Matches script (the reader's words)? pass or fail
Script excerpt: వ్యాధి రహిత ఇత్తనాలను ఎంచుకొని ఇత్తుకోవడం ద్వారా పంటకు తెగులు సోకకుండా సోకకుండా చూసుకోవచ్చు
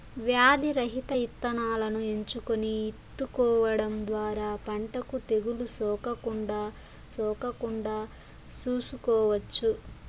pass